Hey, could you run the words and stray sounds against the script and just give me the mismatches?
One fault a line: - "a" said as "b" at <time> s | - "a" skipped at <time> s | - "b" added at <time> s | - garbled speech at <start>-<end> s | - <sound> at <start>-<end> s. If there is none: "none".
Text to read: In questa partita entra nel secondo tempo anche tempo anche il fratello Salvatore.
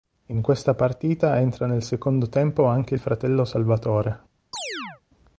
- "tempo anche" skipped at 2.9 s
- chirp at 4.5-5.0 s